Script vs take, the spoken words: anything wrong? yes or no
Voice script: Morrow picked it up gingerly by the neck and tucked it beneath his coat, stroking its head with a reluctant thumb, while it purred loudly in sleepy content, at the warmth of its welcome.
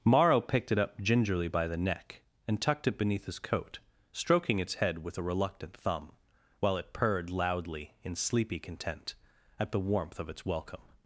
no